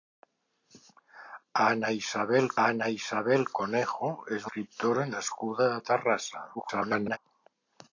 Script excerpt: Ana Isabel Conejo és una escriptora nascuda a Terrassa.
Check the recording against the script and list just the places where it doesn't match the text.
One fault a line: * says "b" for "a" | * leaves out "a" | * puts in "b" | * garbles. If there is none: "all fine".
* puts in "ana Isabel"
* leaves out "una"
* garbles